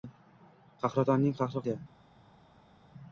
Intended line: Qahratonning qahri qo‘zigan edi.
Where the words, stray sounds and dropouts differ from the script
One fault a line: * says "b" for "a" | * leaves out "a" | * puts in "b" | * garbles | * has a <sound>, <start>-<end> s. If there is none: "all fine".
* leaves out "qo‘zigan"